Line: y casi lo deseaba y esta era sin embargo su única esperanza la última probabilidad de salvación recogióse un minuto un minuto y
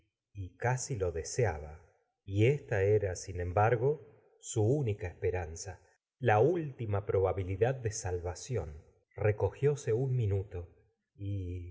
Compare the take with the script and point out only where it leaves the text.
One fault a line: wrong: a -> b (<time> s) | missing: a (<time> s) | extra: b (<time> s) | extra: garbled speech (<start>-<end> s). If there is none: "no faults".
missing: un minuto (10.8 s)